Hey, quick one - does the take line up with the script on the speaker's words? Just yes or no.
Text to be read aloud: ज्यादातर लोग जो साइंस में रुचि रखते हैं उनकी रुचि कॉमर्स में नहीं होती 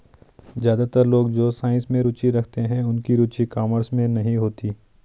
yes